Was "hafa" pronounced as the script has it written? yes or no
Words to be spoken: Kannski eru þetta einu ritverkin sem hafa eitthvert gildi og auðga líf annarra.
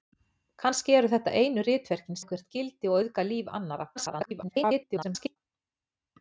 no